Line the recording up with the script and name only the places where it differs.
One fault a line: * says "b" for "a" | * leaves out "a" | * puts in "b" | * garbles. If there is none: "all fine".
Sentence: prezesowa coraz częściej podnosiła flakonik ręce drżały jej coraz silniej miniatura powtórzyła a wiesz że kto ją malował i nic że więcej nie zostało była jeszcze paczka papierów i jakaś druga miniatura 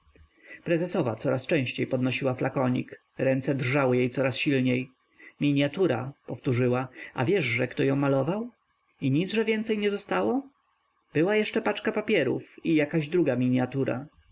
all fine